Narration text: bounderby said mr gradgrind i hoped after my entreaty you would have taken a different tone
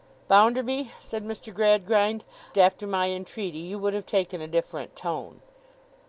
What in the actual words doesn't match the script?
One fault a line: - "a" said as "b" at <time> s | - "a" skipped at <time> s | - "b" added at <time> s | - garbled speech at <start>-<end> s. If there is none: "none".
- "i hoped" skipped at 2.2 s